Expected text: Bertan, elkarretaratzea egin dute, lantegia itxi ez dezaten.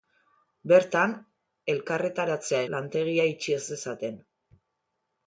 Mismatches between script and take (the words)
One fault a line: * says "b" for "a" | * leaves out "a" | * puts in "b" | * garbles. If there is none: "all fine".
* leaves out "egin dute"